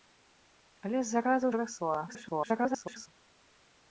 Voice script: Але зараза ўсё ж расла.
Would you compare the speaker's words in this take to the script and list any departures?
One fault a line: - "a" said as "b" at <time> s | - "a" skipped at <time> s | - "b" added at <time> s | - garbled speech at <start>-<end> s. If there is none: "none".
- "ўсё" skipped at 1.5 s
- garbled speech at 2.1-3.1 s